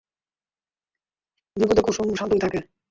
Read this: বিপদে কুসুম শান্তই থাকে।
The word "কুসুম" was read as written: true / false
true